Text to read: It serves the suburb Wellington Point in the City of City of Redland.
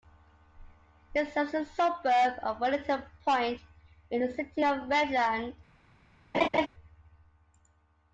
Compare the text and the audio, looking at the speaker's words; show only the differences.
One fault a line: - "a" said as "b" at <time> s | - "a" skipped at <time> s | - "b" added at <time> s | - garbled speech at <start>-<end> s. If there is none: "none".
- "of" added at 2.4 s
- "City of" skipped at 4.9 s